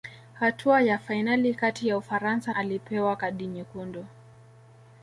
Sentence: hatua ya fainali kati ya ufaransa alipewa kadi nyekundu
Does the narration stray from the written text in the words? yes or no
no